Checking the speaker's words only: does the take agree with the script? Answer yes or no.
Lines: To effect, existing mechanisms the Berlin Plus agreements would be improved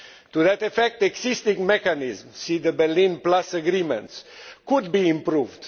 no